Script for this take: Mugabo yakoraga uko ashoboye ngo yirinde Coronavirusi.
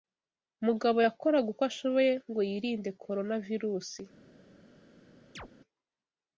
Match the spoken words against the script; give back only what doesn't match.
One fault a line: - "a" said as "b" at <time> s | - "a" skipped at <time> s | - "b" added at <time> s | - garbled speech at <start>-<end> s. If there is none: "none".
none